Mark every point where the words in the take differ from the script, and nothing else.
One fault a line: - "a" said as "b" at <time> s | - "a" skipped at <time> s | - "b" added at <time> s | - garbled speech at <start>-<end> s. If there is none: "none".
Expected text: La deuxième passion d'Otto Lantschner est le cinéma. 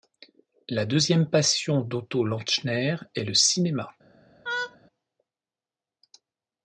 none